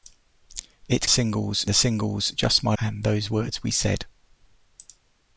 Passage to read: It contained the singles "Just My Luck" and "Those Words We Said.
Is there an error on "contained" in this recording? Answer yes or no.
yes